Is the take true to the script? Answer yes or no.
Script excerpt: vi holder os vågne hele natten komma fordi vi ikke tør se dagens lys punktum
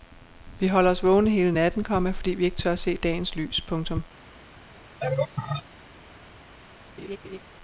yes